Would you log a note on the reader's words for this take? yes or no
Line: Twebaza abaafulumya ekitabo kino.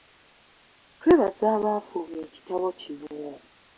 no